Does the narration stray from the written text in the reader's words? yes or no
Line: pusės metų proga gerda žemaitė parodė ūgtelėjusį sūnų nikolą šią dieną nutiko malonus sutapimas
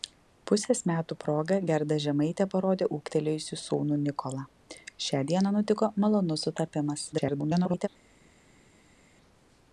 yes